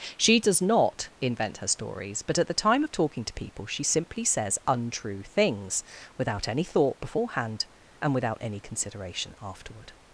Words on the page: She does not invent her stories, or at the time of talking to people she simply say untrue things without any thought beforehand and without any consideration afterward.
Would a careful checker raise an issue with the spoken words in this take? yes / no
yes